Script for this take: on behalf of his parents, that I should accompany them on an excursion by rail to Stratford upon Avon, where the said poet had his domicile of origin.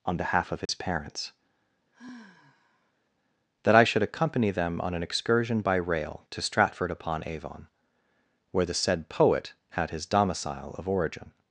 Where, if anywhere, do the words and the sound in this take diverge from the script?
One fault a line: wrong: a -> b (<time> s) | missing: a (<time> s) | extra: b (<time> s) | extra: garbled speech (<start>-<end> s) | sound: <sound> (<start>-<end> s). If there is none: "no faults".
sound: dropout (0.7-0.7 s)
sound: sigh (1.9-2.9 s)